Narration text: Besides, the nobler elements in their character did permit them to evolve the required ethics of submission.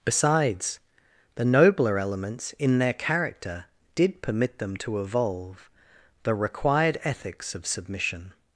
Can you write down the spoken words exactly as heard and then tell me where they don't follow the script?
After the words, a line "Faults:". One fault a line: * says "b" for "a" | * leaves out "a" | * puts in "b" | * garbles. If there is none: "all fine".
Besides, the nobler elements in their character did permit them to evolve the required ethics of submission.
Faults:
all fine